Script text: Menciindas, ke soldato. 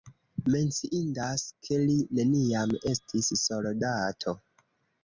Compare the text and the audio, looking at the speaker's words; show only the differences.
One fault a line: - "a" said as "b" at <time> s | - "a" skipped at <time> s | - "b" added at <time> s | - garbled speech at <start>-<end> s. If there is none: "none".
- "li neniam estis" added at 1.8 s